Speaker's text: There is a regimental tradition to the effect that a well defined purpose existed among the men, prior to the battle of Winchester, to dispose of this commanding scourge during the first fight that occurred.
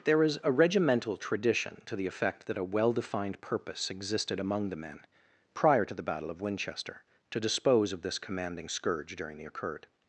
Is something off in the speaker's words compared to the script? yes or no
yes